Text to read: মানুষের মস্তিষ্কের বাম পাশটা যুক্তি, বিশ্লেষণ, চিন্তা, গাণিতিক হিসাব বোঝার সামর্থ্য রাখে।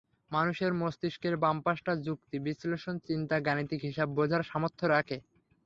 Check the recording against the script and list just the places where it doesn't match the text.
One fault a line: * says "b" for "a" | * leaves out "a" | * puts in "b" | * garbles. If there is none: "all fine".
all fine